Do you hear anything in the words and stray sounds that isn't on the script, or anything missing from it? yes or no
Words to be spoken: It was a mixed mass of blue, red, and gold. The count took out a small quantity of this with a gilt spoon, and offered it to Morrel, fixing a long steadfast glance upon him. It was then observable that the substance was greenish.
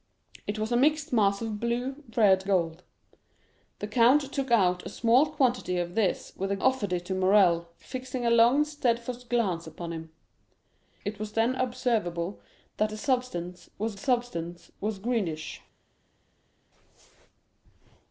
yes